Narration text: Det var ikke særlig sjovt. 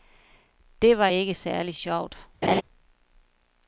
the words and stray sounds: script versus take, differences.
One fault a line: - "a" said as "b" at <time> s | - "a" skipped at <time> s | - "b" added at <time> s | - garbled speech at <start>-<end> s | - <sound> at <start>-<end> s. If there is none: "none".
- laugh at 2.4-2.6 s